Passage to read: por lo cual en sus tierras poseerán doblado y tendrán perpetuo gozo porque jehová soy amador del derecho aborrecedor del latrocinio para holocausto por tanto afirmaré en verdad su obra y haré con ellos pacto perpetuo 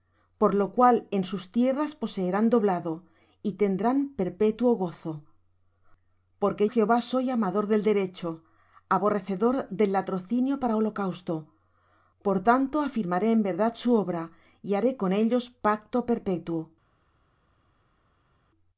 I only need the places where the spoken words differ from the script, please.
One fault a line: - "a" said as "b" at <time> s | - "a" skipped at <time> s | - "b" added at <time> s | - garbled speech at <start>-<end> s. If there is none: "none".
none